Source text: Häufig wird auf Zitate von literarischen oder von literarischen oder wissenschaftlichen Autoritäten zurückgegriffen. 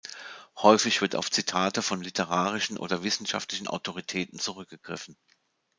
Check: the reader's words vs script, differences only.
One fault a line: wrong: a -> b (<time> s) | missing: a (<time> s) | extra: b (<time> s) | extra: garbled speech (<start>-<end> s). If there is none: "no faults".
missing: von literarischen oder (3.0 s)